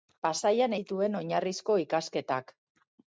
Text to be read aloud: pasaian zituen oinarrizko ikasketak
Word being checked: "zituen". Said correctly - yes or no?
yes